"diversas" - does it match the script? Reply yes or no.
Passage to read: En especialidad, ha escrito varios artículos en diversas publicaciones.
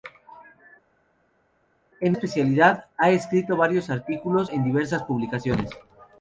yes